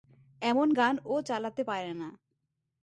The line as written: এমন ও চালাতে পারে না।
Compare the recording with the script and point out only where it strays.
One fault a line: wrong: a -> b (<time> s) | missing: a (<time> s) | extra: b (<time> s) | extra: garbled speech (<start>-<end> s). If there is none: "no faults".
extra: গান (0.7 s)